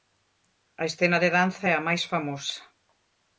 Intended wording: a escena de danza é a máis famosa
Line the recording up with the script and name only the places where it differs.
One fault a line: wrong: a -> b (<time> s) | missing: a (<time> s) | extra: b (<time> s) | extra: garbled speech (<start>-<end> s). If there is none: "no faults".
no faults